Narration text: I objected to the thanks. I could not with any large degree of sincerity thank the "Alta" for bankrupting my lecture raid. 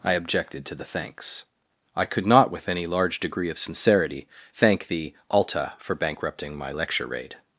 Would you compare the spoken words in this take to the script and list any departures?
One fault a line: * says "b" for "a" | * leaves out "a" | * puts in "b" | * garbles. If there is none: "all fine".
all fine